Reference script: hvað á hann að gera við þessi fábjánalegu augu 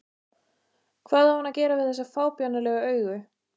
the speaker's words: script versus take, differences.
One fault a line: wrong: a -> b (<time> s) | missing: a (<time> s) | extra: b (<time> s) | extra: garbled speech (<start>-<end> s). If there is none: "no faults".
no faults